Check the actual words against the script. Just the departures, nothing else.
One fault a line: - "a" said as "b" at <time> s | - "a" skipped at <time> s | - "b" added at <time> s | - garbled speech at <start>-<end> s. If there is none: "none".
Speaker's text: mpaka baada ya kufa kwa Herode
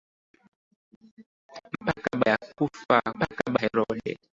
- "baada" skipped at 2.2 s
- "kwa" said as "mpaka" at 3.1 s